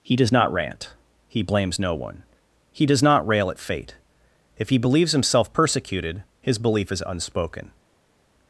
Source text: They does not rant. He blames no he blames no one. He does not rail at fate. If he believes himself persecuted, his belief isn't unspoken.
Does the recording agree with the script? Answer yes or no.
no